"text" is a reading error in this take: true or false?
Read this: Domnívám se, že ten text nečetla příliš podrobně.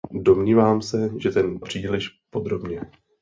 true